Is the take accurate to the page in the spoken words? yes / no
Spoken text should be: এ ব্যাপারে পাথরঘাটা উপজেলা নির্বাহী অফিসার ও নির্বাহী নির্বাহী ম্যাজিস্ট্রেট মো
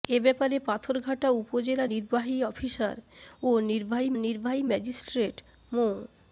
yes